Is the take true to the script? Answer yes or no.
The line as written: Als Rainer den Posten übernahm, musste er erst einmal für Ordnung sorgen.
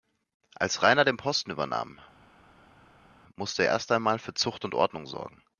no